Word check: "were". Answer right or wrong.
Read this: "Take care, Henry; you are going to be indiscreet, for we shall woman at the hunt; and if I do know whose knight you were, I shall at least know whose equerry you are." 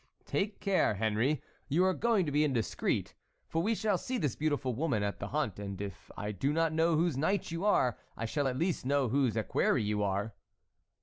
wrong